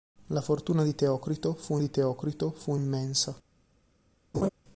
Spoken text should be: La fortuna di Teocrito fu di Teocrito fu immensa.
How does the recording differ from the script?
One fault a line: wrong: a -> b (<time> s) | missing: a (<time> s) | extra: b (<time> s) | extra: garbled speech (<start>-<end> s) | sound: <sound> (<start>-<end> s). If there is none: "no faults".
sound: laugh (4.3-4.5 s)